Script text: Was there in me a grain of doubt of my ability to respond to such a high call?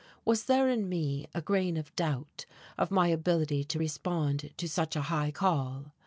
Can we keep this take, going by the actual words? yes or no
yes